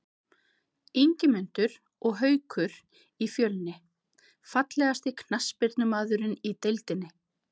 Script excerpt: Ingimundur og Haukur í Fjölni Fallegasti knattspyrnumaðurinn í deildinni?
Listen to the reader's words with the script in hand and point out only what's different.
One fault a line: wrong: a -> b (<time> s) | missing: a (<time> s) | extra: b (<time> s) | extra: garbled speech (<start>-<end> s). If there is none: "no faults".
no faults